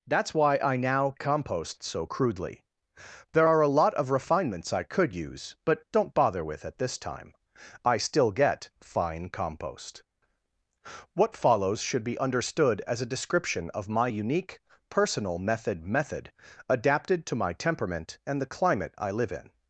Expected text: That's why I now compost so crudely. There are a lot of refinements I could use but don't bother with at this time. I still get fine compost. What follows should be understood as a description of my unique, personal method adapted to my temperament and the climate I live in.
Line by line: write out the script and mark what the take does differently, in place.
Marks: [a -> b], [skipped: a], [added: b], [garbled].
That's why I now compost so crudely. There are a lot of refinements I could use but don't bother with at this time. I still get fine compost. What follows should be understood as a description of my unique, personal method [added: method] adapted to my temperament and the climate I live in.